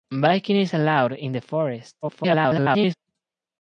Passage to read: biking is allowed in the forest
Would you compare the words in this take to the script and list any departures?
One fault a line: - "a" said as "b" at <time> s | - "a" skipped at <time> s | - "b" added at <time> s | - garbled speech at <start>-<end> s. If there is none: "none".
- garbled speech at 2.0-2.9 s